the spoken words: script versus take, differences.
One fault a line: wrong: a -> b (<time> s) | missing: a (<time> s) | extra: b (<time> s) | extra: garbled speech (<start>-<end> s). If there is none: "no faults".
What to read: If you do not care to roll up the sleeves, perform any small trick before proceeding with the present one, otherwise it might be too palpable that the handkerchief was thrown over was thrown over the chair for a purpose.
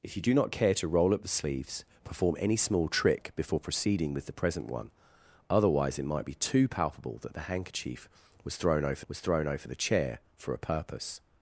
no faults